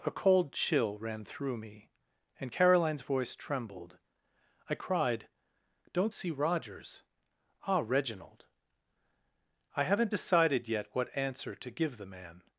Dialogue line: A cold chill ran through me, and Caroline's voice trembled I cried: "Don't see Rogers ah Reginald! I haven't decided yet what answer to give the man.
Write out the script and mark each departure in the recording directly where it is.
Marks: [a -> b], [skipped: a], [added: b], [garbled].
A cold chill ran through me, and Caroline's voice trembled I cried: "Don't see Rogers ah Reginald! I haven't decided yet what answer to give the man.